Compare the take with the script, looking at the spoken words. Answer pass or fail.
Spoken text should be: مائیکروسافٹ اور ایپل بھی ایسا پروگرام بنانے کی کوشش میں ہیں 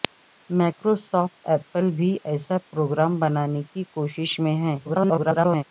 fail